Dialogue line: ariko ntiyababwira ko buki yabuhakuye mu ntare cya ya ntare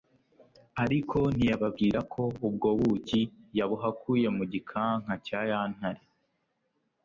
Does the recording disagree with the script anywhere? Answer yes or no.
yes